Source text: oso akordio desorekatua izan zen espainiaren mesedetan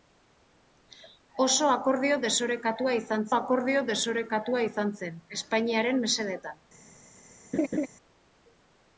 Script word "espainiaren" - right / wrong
right